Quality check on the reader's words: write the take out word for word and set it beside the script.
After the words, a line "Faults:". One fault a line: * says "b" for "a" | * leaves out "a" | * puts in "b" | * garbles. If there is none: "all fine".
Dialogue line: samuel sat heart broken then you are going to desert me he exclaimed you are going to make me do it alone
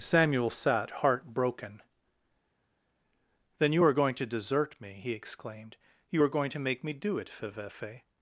samuel sat heart broken then you are going to desert me he exclaimed you are going to make me do it fevefe
Faults:
* says "fevefe" for "alone"